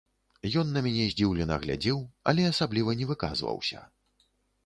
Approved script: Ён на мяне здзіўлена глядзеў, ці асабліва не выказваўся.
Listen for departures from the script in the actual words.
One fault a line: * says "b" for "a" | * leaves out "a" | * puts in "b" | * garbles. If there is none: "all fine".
* says "але" for "ці"